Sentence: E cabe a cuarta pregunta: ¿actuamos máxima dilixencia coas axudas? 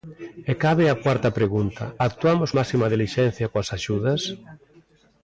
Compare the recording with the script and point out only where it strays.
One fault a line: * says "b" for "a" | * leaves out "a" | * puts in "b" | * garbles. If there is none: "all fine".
all fine